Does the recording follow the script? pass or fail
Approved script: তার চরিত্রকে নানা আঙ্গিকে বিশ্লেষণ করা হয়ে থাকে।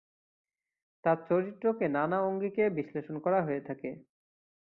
pass